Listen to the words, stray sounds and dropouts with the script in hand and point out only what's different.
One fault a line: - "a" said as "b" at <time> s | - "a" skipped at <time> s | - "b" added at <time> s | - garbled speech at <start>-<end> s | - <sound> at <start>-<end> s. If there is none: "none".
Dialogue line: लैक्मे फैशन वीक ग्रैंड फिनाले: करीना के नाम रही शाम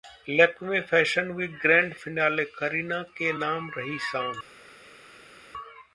none